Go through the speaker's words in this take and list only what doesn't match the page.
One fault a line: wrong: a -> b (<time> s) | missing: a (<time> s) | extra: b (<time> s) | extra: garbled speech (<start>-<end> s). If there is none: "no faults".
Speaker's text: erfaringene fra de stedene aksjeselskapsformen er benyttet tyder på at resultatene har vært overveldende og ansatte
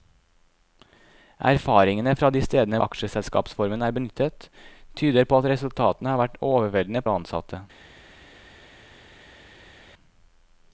no faults